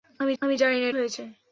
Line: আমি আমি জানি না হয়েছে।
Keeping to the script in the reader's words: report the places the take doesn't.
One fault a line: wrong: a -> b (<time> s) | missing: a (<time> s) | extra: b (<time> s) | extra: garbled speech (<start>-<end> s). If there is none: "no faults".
no faults